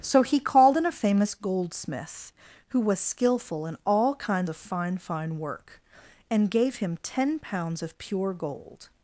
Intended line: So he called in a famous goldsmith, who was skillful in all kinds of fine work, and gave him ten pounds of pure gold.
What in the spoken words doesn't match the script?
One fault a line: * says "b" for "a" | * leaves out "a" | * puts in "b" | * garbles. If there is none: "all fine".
* puts in "fine"